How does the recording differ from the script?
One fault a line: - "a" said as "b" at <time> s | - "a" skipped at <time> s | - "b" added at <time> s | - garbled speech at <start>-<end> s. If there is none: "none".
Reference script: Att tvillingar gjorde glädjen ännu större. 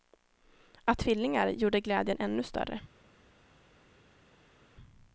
none